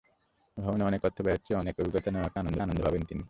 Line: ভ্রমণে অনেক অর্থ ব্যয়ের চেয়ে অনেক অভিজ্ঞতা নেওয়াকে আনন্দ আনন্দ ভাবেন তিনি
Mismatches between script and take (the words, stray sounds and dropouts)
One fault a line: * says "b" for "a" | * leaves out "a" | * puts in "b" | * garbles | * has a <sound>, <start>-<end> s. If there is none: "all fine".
all fine